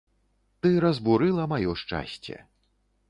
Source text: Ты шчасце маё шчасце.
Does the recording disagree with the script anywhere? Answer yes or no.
yes